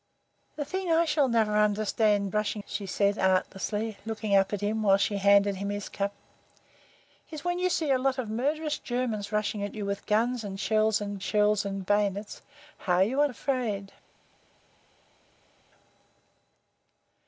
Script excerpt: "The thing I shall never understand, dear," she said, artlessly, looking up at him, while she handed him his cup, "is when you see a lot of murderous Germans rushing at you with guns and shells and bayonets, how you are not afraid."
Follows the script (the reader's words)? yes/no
no